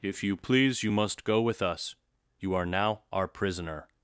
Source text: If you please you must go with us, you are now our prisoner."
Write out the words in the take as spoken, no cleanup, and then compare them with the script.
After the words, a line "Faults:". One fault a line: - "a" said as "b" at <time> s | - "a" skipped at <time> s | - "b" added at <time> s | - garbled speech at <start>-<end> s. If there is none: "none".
If you please you must go with us, you are now our prisoner."
Faults:
none